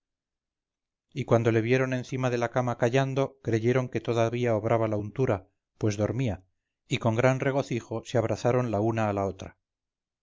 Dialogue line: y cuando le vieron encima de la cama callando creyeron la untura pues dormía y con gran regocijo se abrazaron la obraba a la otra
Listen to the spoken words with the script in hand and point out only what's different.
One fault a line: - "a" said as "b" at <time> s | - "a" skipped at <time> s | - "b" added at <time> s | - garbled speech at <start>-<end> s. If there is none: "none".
- "que todavía obraba" added at 3.9 s
- "obraba" said as "una" at 8.8 s